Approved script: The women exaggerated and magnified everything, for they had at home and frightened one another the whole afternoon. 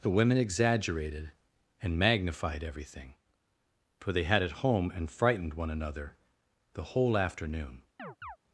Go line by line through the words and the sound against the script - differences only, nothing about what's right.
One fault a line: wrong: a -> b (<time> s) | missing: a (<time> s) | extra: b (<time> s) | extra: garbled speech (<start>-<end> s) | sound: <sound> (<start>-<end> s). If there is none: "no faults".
sound: chirp (8.0-8.4 s)